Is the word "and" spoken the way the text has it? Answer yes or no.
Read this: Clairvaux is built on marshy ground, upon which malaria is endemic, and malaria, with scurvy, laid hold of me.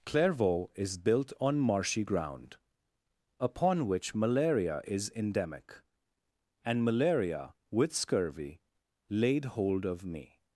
yes